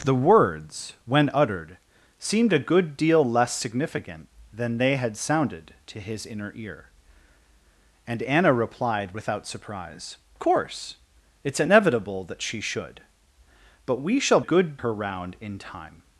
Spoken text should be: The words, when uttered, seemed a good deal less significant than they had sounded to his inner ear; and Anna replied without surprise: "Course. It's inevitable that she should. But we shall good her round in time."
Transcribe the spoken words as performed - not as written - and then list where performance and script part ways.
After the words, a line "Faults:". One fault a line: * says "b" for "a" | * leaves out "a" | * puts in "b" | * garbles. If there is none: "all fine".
The words, when uttered, seemed a good deal less significant than they had sounded to his inner ear; and Anna replied without surprise: "Course. It's inevitable that she should. But we shall good her round in time."
Faults:
all fine